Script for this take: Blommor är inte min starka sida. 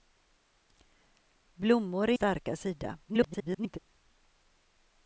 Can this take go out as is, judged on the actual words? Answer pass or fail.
fail